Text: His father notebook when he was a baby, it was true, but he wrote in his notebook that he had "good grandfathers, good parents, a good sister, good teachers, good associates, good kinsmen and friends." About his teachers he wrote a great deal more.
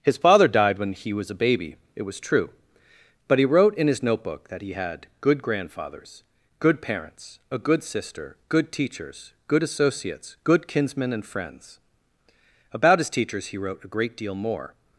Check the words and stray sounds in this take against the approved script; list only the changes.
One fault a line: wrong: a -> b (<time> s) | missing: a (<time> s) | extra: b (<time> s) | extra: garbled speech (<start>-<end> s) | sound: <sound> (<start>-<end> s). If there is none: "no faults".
wrong: notebook -> died (0.5 s)